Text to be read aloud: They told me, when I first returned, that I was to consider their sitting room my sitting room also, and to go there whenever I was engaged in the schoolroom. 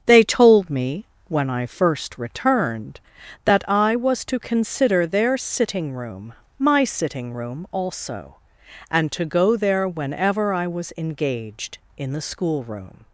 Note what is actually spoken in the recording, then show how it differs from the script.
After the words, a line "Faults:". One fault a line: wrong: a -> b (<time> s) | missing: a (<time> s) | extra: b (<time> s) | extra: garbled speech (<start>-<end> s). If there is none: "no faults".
They told me, when I first returned, that I was to consider their sitting room my sitting room also, and to go there whenever I was engaged in the schoolroom.
Faults:
no faults